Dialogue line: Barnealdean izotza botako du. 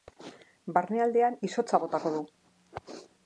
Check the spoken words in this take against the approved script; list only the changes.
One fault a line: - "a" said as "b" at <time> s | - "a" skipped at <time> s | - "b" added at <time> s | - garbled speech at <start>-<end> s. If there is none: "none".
none